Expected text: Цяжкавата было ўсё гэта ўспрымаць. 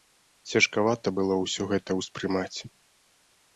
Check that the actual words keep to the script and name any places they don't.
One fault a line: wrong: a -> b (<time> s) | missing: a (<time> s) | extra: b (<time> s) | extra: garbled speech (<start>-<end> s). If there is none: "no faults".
no faults